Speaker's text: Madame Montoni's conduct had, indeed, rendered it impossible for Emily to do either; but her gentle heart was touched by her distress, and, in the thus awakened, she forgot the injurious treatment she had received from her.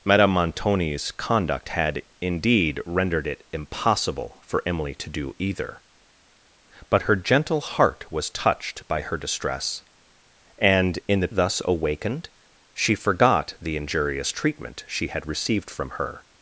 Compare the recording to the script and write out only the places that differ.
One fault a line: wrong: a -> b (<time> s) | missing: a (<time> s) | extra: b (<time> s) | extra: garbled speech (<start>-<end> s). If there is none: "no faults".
no faults